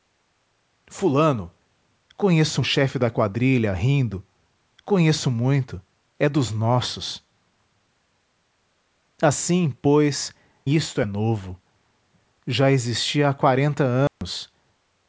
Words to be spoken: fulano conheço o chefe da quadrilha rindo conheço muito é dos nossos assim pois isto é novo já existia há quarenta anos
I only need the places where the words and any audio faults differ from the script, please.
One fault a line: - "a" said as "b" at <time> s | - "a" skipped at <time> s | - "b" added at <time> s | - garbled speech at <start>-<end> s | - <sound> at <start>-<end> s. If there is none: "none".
- dropout at 14.1-14.2 s